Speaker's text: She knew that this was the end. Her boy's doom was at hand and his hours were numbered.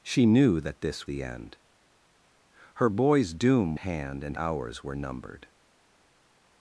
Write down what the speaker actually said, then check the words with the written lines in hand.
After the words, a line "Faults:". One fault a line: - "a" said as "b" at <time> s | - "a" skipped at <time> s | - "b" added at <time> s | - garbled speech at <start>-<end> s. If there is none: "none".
She knew that this the end. Her boy's doom hand and hours were numbered.
Faults:
- "was" skipped at 1.1 s
- "was at" skipped at 3.7 s
- "his" skipped at 4.4 s